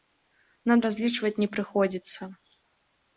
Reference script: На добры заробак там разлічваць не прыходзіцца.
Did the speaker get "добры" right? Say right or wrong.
wrong